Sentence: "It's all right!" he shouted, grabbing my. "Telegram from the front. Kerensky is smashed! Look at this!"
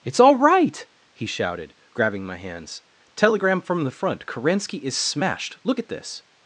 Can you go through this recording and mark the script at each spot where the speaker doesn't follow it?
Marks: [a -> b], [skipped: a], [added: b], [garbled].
"It's all right!" he shouted, grabbing my. [added: hands] "Telegram from the front. Kerensky is smashed! Look at this!"